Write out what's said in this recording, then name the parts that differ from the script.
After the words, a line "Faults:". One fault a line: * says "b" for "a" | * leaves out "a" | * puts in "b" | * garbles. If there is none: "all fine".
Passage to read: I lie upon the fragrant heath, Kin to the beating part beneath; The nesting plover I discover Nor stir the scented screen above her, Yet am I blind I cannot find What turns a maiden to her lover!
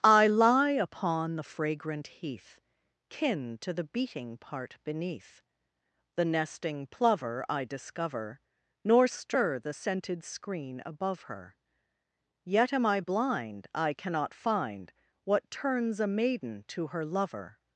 I lie upon the fragrant heath, Kin to the beating part beneath; The nesting plover I discover Nor stir the scented screen above her, Yet am I blind I cannot find What turns a maiden to her lover!
Faults:
all fine